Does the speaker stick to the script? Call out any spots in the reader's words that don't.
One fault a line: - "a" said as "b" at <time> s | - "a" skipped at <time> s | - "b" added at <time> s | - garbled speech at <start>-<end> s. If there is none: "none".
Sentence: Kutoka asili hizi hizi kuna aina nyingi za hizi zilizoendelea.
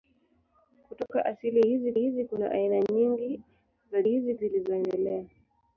none